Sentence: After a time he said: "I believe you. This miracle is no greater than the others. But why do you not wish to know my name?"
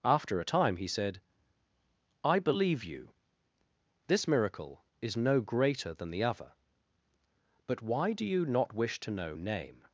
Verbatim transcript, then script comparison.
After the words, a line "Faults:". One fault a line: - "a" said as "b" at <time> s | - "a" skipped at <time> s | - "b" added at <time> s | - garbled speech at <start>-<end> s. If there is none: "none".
After a time he said: "I believe you. This miracle is no greater than the other. But why do you not wish to know name?"
Faults:
- "others" said as "other" at 6.2 s
- "my" skipped at 9.3 s